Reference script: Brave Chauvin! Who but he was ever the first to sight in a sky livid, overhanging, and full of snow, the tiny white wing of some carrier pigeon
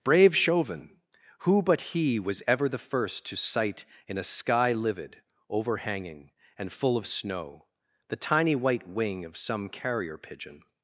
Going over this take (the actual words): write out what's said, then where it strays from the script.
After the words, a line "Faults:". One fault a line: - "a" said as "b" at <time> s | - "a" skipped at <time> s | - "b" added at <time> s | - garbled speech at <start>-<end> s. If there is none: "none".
Brave Chauvin! Who but he was ever the first to sight in a sky livid, overhanging, and full of snow, the tiny white wing of some carrier pigeon
Faults:
none